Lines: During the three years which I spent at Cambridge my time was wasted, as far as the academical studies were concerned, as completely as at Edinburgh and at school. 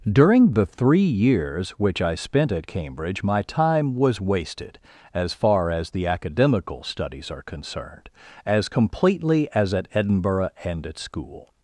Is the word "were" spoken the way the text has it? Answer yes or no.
no